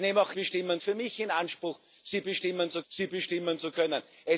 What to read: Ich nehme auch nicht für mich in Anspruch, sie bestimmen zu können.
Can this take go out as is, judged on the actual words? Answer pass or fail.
fail